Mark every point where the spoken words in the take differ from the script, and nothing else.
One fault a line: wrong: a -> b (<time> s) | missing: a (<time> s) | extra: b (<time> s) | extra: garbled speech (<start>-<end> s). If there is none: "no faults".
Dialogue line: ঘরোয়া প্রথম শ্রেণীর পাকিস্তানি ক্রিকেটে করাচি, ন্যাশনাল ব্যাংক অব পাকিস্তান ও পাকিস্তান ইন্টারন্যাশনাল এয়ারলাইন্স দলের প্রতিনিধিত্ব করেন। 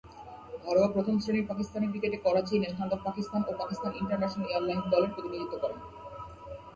missing: ব্যাংক (2.9 s)